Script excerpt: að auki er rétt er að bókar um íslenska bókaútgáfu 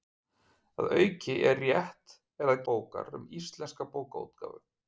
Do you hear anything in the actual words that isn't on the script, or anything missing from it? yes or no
no